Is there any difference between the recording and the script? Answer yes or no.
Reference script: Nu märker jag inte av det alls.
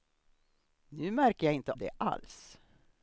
yes